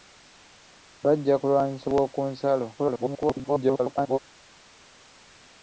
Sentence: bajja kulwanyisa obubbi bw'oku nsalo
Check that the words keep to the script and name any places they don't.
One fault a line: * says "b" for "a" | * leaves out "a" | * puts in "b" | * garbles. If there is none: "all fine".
* leaves out "obubbi"
* garbles